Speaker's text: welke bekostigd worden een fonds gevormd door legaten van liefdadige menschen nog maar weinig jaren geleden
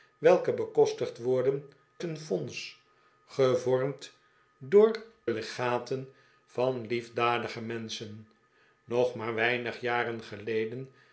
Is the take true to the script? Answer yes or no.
yes